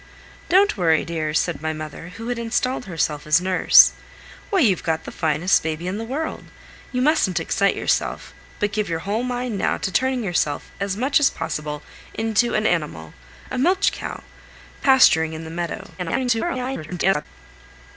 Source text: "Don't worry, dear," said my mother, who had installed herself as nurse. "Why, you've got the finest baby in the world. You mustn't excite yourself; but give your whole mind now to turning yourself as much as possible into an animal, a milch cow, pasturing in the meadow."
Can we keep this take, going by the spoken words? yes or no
no